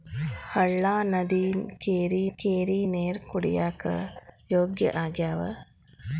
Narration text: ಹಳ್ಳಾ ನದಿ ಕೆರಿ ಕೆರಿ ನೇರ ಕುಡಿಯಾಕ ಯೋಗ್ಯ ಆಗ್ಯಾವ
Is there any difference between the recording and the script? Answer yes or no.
no